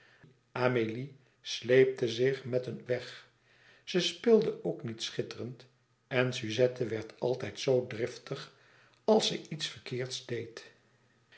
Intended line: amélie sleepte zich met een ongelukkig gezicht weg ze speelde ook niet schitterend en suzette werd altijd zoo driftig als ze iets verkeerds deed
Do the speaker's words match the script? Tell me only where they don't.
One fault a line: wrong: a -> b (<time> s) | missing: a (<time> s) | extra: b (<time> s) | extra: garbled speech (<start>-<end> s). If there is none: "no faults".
missing: ongelukkig gezicht (2.8 s)